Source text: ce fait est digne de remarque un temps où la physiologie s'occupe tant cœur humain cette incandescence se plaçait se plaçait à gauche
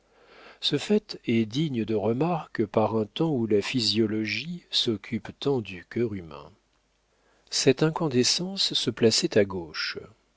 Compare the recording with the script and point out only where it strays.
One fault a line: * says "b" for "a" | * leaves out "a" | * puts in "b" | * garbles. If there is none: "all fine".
* puts in "par"
* puts in "du"
* leaves out "se plaçait"